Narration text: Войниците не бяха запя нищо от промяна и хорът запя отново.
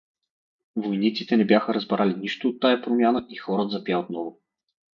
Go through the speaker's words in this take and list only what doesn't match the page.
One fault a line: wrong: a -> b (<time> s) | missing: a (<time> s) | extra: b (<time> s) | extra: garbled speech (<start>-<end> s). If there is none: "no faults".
wrong: запя -> разбрали (1.7 s)
extra: тая (2.6 s)